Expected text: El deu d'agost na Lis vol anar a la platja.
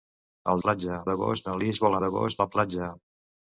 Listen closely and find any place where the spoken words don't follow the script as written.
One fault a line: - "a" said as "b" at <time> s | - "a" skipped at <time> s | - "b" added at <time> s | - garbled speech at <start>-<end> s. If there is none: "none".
- "deu" said as "platja" at 0.7 s
- "anar" said as "d'agost" at 2.0 s